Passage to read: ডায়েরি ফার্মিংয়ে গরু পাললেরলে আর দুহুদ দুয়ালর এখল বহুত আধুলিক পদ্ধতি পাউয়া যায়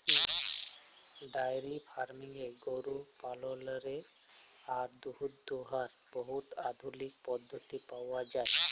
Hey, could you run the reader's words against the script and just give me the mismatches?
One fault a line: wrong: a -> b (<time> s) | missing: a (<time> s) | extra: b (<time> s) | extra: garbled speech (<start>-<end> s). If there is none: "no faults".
missing: এখল (5.9 s)